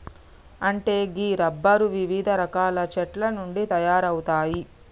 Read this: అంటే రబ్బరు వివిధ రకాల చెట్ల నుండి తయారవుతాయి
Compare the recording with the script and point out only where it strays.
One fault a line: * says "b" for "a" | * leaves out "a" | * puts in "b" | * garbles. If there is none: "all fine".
* puts in "గీ"